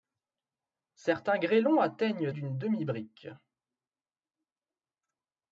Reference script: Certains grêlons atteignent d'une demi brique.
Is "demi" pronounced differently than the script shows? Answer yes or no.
no